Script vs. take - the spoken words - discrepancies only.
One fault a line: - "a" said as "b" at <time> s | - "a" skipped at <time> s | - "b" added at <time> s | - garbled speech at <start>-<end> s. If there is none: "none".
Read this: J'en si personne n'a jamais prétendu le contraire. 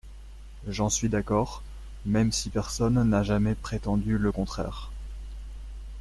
- "suis d'accord même" added at 0.9 s